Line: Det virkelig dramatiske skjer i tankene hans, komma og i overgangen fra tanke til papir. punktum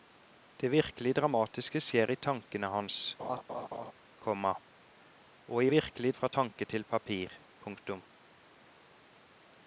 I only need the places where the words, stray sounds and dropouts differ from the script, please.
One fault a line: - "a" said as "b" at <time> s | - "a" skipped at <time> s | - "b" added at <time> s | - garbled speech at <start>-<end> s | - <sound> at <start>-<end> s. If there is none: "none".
- laugh at 3.2-3.9 s
- "overgangen" said as "virkelig" at 5.7 s